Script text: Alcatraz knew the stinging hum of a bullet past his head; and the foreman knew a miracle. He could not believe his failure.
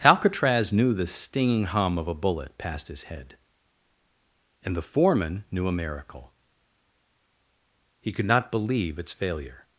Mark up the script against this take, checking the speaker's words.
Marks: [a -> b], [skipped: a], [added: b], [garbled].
Alcatraz knew the stinging hum of a bullet past his head; and the foreman knew a miracle. He could not believe [his -> its] failure.